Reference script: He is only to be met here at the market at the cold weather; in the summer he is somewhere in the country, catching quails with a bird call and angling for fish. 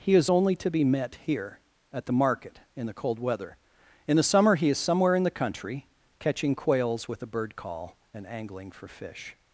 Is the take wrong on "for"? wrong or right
right